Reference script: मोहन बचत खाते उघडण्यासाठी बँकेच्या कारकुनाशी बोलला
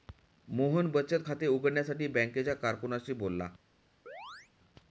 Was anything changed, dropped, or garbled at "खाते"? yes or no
no